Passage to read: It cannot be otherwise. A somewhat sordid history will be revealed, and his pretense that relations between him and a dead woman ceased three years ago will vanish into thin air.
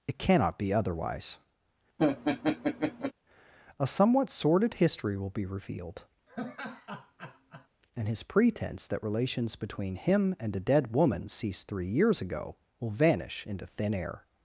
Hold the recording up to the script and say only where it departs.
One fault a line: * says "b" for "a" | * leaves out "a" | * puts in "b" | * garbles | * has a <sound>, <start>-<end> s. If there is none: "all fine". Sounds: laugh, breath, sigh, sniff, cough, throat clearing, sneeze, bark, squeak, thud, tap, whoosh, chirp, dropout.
* has a laugh, 2.0-3.1 s
* has a laugh, 6.3-7.7 s